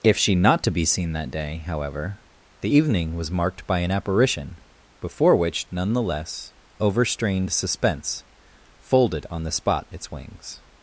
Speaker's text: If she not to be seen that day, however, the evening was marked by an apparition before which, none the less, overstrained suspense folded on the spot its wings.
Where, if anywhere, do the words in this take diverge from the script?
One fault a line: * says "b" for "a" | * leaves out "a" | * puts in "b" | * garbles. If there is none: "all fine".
all fine